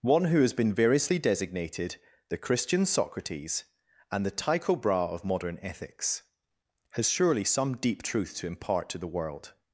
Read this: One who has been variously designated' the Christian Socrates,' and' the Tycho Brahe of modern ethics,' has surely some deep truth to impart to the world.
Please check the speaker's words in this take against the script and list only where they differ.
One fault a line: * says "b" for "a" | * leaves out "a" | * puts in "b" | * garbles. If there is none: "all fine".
all fine